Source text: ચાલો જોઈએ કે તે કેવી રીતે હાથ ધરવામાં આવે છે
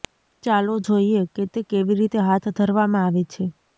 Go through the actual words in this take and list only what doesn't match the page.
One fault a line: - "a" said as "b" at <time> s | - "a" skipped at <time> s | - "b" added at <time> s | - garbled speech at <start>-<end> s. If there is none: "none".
none